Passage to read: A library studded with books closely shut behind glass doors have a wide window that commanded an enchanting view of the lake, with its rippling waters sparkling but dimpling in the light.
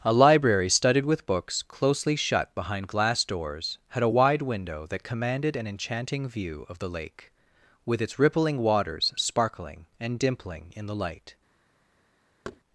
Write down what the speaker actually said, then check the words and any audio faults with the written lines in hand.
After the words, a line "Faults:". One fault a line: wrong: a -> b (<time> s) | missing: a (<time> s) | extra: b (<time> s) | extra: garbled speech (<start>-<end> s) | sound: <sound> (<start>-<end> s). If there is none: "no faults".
A library studded with books closely shut behind glass doors had a wide window that commanded an enchanting view of the lake, with its rippling waters sparkling and dimpling in the light.
Faults:
wrong: have -> had (3.9 s)
wrong: but -> and (10.0 s)
sound: thud (12.4-12.6 s)